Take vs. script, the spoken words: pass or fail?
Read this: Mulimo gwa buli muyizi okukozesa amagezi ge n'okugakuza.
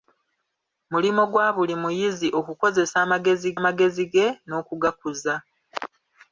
fail